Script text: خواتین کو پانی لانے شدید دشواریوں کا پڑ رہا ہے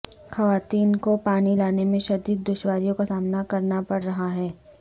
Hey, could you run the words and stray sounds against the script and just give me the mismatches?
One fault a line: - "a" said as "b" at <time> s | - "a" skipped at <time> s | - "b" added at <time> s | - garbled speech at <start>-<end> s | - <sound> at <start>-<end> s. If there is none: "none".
- "میں" added at 1.8 s
- "سامنا کرنا" added at 3.0 s